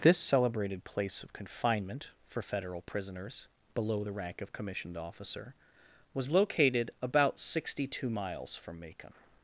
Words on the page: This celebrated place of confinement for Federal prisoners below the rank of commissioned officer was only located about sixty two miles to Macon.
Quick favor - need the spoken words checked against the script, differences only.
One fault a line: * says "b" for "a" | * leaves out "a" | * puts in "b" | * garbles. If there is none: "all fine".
* leaves out "only"
* says "from" for "to"